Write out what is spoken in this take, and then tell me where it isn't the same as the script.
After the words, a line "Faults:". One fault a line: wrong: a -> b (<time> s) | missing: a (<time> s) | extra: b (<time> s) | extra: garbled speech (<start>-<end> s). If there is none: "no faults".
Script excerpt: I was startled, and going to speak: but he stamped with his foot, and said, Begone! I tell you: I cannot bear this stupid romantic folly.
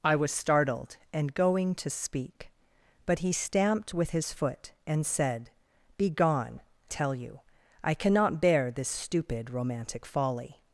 I was startled, and going to speak: but he stamped with his foot, and said, Begone! tell you: I cannot bear this stupid romantic folly.
Faults:
missing: I (6.6 s)